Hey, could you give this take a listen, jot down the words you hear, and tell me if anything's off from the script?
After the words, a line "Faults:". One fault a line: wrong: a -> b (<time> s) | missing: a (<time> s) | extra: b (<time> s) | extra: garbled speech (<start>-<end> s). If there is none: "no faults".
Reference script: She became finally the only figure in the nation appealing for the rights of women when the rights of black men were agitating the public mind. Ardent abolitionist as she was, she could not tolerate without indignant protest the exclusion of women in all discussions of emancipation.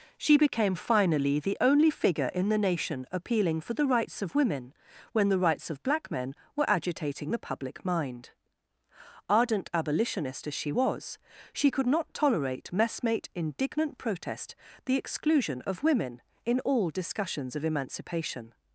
She became finally the only figure in the nation appealing for the rights of women when the rights of black men were agitating the public mind. Ardent abolitionist as she was, she could not tolerate messmate indignant protest the exclusion of women in all discussions of emancipation.
Faults:
wrong: without -> messmate (12.7 s)